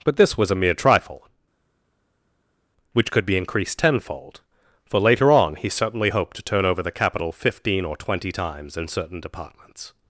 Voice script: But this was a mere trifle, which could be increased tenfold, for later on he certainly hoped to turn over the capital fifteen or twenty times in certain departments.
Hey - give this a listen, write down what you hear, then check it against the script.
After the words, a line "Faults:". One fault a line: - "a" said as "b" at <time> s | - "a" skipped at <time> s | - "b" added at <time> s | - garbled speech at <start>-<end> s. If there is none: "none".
But this was a mere trifle, which could be increased tenfold, for later on he certainly hoped to turn over the capital fifteen or twenty times in certain departments.
Faults:
none